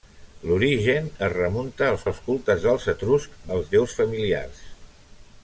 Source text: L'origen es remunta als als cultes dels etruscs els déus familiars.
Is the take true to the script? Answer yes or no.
yes